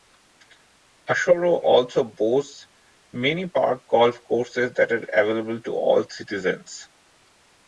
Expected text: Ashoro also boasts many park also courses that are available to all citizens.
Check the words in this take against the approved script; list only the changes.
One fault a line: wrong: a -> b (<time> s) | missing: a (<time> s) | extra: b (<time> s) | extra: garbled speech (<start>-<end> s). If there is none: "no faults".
wrong: also -> golf (3.9 s)